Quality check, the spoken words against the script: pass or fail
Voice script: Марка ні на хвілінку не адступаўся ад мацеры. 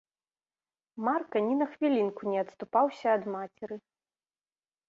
pass